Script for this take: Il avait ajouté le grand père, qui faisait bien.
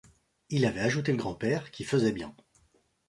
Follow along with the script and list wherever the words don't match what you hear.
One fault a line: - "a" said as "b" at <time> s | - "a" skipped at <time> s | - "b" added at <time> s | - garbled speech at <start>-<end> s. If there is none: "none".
none